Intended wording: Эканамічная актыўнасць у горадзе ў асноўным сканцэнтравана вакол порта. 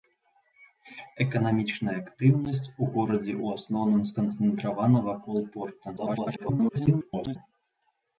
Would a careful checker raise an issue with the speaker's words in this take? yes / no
yes